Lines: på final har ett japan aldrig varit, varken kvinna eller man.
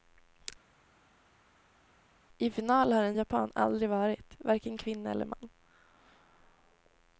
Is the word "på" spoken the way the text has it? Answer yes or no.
no